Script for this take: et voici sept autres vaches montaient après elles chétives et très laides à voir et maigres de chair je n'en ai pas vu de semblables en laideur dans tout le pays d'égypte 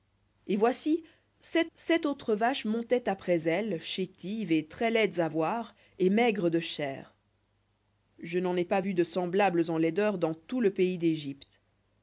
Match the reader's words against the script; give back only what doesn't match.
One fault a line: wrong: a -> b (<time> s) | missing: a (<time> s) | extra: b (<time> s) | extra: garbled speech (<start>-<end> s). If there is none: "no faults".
extra: sept (1.8 s)